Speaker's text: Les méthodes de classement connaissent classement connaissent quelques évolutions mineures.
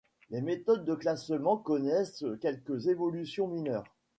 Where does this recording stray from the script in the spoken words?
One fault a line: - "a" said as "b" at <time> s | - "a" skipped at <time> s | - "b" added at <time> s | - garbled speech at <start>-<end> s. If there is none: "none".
- "classement connaissent" skipped at 2.2 s